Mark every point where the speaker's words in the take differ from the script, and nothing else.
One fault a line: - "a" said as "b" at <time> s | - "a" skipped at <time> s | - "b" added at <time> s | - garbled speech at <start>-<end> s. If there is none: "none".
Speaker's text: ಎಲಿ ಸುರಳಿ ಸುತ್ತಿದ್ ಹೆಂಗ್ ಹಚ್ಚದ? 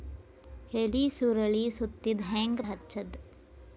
none